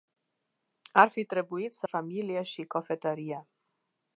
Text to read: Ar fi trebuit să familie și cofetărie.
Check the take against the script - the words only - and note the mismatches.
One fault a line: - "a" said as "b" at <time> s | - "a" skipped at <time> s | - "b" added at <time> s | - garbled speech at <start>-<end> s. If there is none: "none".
none